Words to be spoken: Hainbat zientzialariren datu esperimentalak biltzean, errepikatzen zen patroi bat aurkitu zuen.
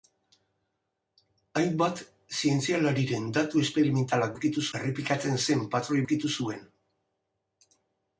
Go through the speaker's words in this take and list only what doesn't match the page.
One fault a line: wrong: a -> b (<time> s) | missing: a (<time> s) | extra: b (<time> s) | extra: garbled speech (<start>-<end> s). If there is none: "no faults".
wrong: biltzean -> aurkitu (4.3 s)
missing: bat (6.0 s)